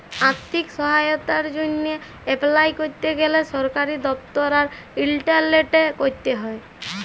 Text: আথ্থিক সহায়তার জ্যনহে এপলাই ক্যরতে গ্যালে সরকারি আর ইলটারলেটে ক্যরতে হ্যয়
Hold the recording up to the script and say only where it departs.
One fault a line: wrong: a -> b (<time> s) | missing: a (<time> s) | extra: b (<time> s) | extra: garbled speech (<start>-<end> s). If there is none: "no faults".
extra: দপ্তর (4.1 s)